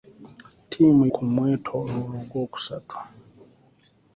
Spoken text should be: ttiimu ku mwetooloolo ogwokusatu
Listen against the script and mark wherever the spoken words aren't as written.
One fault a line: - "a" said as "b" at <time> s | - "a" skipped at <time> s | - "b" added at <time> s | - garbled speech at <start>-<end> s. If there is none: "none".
none